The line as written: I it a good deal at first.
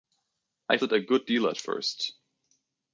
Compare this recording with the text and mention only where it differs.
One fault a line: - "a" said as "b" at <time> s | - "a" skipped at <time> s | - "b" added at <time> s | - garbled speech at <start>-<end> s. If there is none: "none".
none